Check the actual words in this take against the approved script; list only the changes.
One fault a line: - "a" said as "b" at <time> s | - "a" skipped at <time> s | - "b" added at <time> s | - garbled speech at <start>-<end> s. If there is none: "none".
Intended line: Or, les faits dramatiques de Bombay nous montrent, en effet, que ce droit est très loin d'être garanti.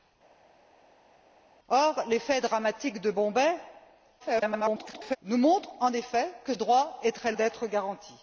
- garbled speech at 4.2-5.2 s
- "ce" skipped at 6.5 s
- "loin" skipped at 7.3 s